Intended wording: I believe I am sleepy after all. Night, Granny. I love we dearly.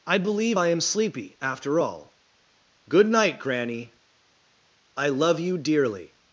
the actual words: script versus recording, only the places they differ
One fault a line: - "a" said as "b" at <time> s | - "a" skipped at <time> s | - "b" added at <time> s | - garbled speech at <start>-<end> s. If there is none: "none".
- "Good" added at 2.9 s
- "we" said as "you" at 5.4 s